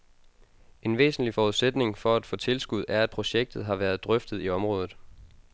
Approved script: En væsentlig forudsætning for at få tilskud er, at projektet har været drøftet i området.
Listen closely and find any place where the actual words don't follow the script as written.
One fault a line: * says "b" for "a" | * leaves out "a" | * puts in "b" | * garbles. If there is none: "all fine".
all fine